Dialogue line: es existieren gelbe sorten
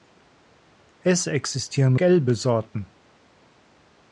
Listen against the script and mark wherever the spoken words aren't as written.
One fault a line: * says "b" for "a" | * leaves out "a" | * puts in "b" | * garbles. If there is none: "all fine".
all fine